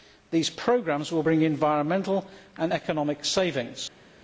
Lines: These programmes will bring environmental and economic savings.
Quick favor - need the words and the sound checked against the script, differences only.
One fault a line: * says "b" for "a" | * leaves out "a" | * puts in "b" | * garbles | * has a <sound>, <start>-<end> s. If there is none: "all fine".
all fine